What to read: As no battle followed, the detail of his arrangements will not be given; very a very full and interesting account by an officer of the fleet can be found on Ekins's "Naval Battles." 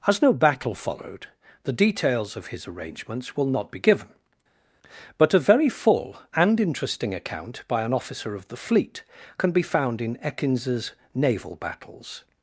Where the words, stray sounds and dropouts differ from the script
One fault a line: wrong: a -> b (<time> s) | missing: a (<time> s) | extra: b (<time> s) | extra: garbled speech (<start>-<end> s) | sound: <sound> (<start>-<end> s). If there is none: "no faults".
wrong: detail -> details (1.7 s)
wrong: very -> but (5.2 s)
wrong: on -> in (10.0 s)